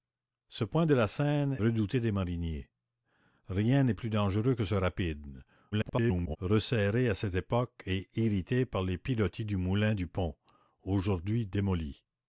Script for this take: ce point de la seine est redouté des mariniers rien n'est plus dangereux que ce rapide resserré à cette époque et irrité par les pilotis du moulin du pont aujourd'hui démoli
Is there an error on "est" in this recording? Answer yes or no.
yes